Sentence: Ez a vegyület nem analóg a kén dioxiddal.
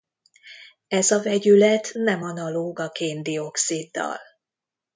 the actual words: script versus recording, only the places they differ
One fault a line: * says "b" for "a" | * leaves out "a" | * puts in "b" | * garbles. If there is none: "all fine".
all fine